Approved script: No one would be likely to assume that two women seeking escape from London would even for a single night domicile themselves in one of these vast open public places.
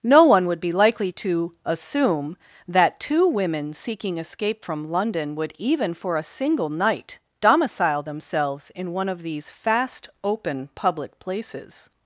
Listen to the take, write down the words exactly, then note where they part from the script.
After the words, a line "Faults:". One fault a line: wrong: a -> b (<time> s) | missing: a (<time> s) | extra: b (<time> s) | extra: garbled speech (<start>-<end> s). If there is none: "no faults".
No one would be likely to assume that two women seeking escape from London would even for a single night domicile themselves in one of these fast open public places.
Faults:
wrong: vast -> fast (9.5 s)